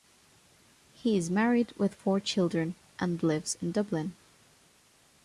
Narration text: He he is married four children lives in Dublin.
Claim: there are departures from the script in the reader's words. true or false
true